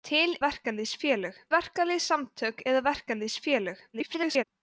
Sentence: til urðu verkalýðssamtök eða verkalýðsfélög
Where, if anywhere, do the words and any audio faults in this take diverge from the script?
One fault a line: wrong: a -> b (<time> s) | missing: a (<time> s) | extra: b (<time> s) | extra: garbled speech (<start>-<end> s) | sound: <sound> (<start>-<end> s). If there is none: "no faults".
wrong: urðu -> verkalýðsfélög (0.5 s)
extra: garbled speech (3.9-4.4 s)